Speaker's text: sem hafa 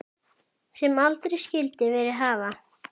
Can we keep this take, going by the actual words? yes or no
no